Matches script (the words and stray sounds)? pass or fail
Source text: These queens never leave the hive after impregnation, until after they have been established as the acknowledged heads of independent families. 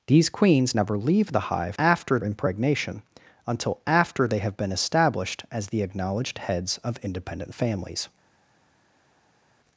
pass